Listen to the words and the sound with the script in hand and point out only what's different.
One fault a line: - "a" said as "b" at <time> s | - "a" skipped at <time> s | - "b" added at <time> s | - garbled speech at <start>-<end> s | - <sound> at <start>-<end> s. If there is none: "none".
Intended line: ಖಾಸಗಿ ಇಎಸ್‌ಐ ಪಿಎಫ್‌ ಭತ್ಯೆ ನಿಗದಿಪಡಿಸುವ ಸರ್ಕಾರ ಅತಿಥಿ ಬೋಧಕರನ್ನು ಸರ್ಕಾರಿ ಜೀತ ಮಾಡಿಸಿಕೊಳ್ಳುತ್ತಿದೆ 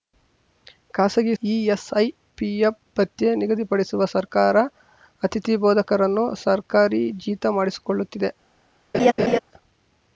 - laugh at 8.9-9.4 s